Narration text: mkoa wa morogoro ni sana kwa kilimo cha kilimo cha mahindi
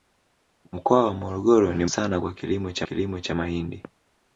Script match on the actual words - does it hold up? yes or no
yes